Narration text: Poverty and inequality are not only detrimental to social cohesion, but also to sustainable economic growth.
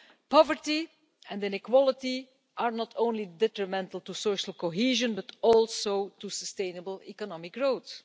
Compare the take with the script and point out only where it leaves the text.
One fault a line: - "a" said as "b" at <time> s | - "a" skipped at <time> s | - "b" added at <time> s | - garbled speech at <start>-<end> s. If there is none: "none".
none